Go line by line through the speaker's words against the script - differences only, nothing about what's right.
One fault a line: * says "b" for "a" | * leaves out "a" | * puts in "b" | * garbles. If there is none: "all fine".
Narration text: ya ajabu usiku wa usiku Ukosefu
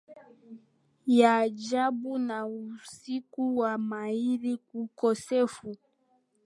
* puts in "na"
* says "mahiri" for "usiku"